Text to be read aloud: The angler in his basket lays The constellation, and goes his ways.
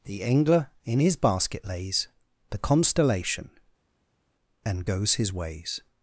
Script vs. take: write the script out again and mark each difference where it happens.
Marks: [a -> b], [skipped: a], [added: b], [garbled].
The angler in his basket lays The constellation, and goes his ways.